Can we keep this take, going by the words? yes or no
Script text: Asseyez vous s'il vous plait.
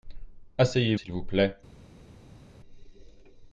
no